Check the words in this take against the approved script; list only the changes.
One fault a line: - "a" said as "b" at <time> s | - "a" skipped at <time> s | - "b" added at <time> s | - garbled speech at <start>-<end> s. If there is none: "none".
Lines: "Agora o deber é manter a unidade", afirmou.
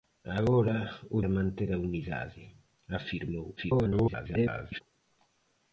- "deber" skipped at 1.2 s
- garbled speech at 3.6-4.8 s